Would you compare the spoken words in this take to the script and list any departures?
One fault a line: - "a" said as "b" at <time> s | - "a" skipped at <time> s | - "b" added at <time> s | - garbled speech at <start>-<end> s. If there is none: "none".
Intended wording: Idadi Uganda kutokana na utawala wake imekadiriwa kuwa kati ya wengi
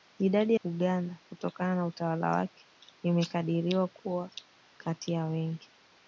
none